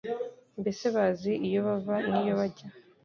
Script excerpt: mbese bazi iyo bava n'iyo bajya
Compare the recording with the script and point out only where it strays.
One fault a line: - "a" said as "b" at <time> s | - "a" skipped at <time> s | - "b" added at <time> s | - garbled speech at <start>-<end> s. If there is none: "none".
none